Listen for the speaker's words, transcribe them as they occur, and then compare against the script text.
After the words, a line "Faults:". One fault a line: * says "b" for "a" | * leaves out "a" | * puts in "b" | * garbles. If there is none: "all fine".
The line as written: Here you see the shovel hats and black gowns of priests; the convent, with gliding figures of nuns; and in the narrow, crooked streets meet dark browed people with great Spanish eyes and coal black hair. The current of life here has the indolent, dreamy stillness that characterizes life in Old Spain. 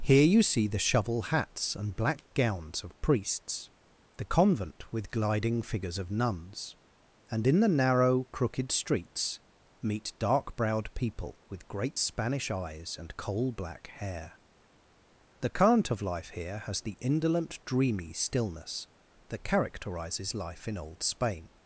Here you see the shovel hats and black gowns of priests; the convent, with gliding figures of nuns; and in the narrow, crooked streets meet dark browed people with great Spanish eyes and coal black hair. The current of life here has the indolent, dreamy stillness that characterizes life in Old Spain.
Faults:
all fine